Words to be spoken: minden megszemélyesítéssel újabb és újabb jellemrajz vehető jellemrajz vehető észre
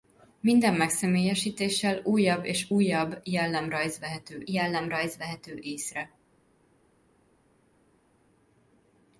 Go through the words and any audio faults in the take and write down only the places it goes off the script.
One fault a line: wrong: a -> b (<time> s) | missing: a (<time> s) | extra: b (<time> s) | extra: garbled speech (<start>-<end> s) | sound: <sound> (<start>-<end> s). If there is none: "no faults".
no faults